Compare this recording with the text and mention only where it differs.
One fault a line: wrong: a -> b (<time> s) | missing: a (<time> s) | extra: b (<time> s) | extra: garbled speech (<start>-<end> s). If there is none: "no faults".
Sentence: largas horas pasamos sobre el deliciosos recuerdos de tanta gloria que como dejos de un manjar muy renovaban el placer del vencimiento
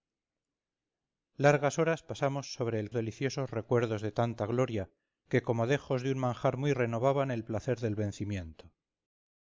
no faults